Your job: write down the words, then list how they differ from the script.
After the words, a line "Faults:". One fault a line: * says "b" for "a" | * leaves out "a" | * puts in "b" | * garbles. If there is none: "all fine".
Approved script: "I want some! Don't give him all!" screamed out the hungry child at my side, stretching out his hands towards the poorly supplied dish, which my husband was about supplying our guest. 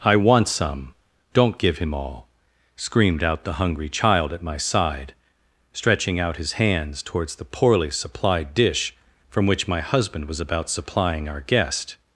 "I want some! Don't give him all!" screamed out the hungry child at my side, stretching out his hands towards the poorly supplied dish, from which my husband was about supplying our guest.
Faults:
* puts in "from"